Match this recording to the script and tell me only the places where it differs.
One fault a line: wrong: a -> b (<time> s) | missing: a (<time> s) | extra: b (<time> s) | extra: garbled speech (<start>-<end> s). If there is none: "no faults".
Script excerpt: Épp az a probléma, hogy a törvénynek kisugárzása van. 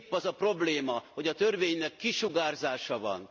no faults